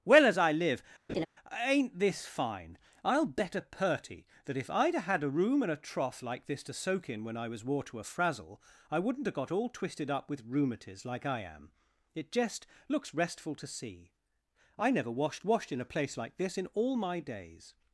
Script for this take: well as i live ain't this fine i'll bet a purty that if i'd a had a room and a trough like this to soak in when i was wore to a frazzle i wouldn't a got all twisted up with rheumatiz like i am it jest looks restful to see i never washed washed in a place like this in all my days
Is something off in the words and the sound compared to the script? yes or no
yes